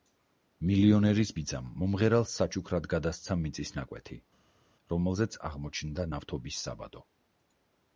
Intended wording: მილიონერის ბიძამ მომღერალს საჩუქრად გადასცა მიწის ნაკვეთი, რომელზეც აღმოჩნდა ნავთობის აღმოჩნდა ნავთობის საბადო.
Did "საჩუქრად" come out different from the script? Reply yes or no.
no